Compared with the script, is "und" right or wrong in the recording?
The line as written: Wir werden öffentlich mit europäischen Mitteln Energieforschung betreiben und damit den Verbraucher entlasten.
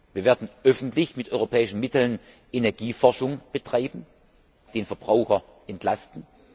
wrong